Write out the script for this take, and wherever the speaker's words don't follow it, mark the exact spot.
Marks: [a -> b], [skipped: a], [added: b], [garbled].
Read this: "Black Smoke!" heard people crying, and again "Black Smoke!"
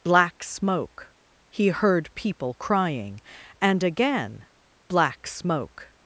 "Black Smoke!" [added: he] heard people crying, and again "Black Smoke!"